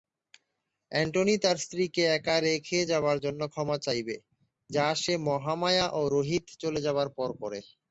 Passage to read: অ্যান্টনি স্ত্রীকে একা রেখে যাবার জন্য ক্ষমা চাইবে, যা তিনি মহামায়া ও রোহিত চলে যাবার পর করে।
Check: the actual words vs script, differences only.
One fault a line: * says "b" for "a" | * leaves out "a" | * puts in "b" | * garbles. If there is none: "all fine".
* puts in "তার"
* says "সে" for "তিনি"